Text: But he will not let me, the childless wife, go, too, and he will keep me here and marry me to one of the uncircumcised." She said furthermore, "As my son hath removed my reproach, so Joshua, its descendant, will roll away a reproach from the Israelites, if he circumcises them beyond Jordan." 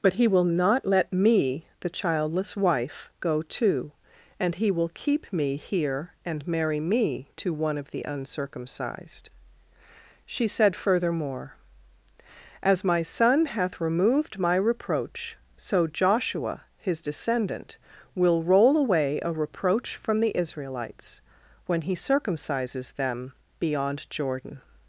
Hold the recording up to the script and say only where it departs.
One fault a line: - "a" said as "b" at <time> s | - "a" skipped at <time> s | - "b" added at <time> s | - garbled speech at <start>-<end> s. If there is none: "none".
- "its" said as "his" at 16.8 s
- "if" said as "when" at 21.7 s